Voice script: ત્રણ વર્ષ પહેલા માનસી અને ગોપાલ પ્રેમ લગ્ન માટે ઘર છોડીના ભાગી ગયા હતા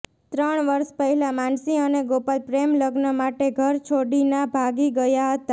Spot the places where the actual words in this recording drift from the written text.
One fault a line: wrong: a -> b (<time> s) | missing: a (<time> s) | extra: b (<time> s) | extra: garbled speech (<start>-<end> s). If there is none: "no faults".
no faults